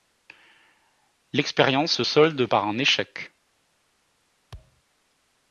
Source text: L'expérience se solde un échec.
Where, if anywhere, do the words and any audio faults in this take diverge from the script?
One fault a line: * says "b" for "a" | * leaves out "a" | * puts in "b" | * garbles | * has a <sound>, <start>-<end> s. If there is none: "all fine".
* puts in "par"
* has a thud, 4.5-4.8 s